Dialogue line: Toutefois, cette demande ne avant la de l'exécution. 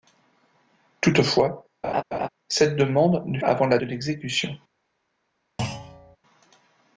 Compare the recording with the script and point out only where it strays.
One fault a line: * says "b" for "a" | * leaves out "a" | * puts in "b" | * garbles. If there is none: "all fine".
all fine